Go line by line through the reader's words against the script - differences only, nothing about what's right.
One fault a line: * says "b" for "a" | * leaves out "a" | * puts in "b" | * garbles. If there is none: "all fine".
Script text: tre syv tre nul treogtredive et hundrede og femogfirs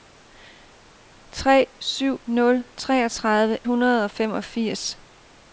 * leaves out "tre"
* leaves out "et"